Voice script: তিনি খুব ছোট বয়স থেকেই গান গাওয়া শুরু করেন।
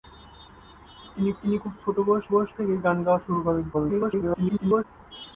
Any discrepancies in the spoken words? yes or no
yes